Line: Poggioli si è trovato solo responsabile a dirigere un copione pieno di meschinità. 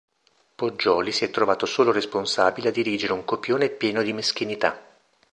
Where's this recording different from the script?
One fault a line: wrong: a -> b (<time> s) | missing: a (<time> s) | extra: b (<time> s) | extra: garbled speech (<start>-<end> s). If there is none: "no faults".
no faults